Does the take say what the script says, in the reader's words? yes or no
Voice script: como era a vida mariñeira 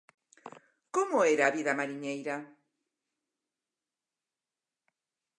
yes